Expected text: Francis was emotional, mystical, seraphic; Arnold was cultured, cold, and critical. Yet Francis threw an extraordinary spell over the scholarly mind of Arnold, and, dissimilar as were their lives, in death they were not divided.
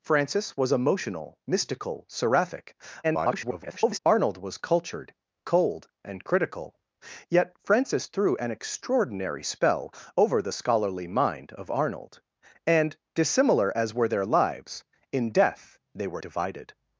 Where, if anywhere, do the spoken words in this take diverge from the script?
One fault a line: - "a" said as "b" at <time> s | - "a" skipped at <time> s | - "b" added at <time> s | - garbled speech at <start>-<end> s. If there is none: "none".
- garbled speech at 3.0-4.0 s
- "not" skipped at 16.2 s